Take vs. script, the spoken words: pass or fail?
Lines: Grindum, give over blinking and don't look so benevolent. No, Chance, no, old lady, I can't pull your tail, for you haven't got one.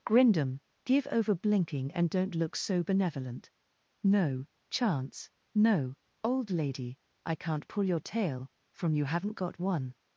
fail